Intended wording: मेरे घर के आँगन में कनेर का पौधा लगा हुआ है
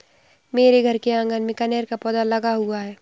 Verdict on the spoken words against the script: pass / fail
pass